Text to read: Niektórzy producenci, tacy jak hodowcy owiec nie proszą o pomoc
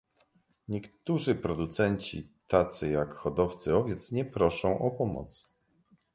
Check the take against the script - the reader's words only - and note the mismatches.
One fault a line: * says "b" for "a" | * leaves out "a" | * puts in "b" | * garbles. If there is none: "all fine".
all fine